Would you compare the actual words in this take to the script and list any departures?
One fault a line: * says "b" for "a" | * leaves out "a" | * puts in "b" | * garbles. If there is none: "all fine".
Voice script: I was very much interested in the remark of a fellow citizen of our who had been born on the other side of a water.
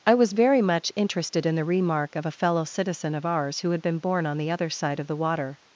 * says "ours" for "our"
* says "the" for "a"